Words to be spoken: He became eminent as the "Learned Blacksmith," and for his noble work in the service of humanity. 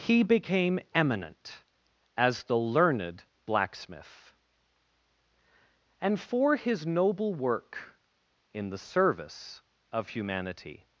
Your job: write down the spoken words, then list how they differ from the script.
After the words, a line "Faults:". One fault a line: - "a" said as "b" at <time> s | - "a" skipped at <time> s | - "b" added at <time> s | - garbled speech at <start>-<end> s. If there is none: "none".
He became eminent as the "Learned Blacksmith," and for his noble work in the service of humanity.
Faults:
none